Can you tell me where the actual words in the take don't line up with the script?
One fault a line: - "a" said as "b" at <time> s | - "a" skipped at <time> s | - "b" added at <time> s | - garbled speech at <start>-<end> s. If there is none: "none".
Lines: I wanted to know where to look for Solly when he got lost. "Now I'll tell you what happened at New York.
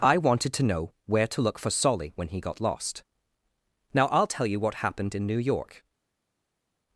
- "at" said as "in" at 5.1 s